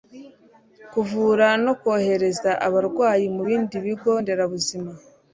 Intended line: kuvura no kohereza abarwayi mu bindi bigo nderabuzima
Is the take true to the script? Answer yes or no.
yes